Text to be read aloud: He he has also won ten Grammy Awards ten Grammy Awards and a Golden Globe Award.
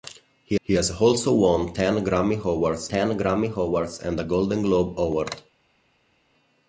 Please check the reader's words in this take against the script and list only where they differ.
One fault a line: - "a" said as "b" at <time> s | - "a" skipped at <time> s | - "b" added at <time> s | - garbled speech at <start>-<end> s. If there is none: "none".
none